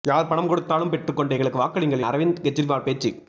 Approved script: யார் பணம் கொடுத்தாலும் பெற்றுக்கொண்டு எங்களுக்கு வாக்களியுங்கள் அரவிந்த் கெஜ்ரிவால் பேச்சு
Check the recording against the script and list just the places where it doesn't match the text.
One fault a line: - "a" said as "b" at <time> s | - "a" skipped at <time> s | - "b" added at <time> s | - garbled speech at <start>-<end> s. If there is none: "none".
none